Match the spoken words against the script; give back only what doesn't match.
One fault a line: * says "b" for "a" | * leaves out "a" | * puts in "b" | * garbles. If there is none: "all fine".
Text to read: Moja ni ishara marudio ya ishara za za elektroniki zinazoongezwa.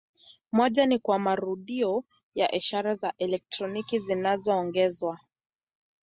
* says "kwa" for "ishara"
* leaves out "za"